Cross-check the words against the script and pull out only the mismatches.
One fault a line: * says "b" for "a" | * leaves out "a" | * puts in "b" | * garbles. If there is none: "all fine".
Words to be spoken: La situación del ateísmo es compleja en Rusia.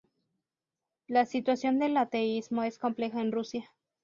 all fine